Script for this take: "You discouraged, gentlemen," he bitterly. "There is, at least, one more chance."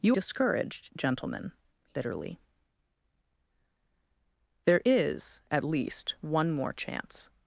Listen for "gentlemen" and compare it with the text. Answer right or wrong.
right